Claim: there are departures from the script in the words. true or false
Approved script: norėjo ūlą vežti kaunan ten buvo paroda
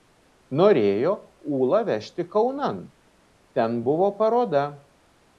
false